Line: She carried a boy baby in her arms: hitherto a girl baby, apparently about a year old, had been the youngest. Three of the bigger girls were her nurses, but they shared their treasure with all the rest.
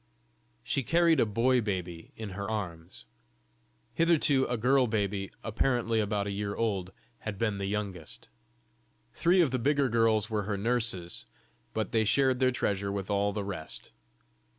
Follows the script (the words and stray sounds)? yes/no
yes